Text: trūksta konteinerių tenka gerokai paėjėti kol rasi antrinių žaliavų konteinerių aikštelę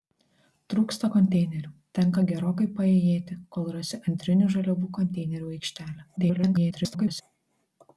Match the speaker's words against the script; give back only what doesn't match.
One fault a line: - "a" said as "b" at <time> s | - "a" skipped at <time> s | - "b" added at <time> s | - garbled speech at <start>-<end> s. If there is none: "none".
- garbled speech at 6.2-7.2 s